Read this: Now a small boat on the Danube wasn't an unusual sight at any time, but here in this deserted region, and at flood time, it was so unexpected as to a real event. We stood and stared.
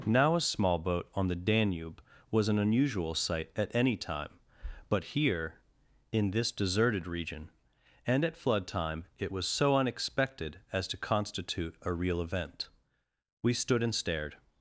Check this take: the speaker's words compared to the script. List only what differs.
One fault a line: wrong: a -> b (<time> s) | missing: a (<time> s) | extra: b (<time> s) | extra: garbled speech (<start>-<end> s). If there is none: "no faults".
wrong: wasn't -> was (2.3 s)
extra: constitute (11.0 s)